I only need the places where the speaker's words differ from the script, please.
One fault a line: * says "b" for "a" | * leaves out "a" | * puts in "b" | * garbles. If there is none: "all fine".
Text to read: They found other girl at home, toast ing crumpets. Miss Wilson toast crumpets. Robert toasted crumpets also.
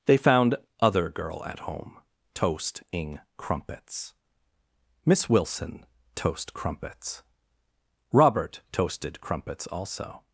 all fine